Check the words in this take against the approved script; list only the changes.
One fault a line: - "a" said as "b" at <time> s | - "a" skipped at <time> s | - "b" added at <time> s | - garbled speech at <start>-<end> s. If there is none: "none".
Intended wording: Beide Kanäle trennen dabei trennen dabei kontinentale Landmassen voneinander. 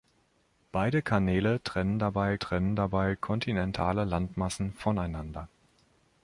none